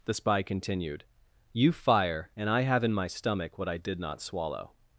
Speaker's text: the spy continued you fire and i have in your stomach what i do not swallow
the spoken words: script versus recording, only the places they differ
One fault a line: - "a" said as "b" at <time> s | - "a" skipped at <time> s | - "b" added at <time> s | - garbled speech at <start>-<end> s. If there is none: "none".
- "your" said as "my" at 2.9 s
- "do" said as "did" at 3.8 s